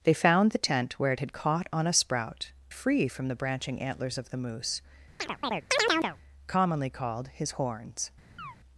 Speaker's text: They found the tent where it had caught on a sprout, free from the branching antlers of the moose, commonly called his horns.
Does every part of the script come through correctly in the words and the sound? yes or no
no